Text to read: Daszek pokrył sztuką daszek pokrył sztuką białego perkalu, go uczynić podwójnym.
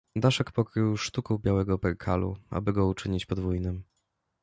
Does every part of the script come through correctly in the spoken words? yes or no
no